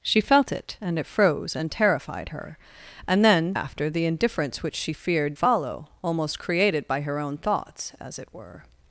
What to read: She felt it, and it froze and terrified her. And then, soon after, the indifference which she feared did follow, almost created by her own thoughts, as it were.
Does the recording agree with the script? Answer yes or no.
no